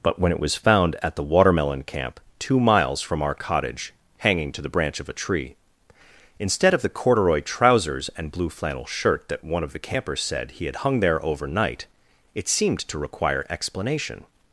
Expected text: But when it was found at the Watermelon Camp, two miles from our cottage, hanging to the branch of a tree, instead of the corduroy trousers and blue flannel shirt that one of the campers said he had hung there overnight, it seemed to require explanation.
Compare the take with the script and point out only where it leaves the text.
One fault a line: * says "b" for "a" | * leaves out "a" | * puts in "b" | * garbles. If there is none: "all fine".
all fine